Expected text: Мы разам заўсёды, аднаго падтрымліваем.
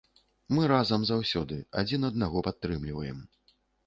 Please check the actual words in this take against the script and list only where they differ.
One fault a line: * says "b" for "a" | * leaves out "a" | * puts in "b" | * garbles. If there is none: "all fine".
* puts in "адзін"